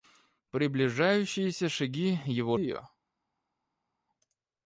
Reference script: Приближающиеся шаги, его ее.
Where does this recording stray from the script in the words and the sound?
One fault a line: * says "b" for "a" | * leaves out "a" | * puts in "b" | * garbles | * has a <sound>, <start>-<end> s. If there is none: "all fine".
all fine